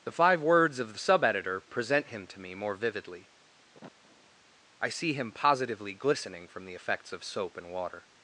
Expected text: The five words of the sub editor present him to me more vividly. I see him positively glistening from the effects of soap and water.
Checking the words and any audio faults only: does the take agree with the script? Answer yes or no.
no